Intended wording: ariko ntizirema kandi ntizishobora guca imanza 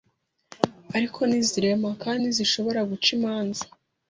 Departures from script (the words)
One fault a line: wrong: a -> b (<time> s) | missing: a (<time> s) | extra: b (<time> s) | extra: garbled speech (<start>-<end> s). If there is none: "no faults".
no faults